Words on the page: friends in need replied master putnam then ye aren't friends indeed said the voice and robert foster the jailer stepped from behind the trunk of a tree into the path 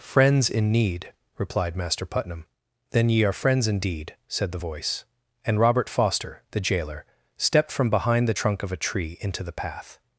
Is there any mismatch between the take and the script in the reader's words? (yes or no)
yes